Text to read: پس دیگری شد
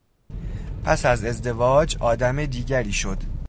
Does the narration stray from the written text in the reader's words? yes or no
yes